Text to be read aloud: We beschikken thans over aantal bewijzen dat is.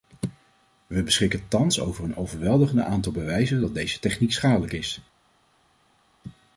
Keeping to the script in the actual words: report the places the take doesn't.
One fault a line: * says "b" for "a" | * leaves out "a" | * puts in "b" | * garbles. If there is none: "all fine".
* puts in "een overweldigend"
* puts in "deze techniek schadelijk"